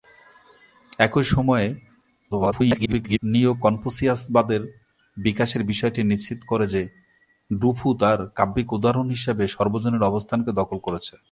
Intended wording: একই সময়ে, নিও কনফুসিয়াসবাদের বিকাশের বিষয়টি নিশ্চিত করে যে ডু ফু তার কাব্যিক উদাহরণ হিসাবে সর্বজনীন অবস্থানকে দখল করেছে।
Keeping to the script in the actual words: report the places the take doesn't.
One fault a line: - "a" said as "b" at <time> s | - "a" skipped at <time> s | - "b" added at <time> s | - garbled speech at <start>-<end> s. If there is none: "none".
- garbled speech at 2.3-3.2 s